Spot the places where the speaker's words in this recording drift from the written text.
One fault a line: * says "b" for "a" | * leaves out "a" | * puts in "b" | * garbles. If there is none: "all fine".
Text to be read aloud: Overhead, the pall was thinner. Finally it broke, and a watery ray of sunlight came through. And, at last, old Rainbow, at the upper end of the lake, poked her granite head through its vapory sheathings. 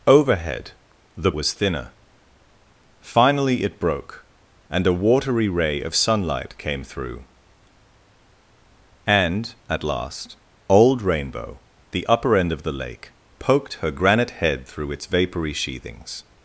* leaves out "pall"
* leaves out "at"